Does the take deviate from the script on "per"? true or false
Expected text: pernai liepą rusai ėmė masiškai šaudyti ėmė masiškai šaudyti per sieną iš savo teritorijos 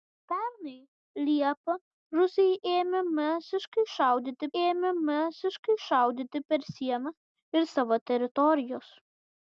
false